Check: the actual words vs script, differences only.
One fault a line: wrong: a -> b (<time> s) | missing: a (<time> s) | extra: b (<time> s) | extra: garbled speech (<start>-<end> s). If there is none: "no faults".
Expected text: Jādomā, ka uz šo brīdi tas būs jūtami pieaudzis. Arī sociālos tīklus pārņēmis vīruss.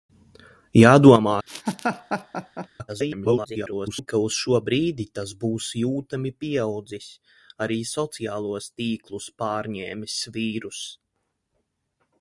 extra: garbled speech (2.9-4.1 s)